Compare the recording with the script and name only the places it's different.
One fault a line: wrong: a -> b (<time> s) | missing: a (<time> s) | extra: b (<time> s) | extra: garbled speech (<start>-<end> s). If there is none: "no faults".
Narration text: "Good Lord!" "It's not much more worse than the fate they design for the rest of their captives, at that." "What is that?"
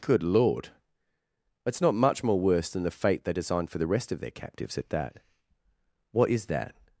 wrong: design -> designed (3.3 s)